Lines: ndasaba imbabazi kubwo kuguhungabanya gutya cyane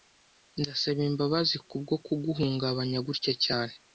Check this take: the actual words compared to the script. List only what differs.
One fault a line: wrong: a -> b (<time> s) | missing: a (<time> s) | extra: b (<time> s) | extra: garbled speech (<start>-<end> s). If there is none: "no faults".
no faults